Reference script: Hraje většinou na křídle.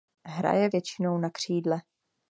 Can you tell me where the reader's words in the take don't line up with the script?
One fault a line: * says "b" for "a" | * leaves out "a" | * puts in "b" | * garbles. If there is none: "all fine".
all fine